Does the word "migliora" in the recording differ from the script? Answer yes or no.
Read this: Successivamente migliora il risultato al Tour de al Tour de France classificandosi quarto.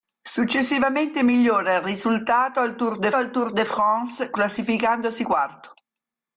no